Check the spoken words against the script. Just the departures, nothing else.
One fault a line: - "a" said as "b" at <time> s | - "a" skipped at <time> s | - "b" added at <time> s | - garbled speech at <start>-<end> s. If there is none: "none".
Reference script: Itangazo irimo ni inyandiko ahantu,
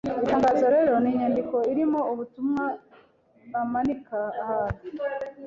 - "irimo" said as "rero" at 0.7 s
- "irimo ubutumwa bamanika" added at 1.7 s